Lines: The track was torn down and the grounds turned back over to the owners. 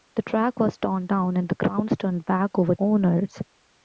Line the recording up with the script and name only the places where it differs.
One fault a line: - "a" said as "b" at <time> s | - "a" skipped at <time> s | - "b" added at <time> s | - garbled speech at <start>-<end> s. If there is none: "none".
- "to the" skipped at 2.7 s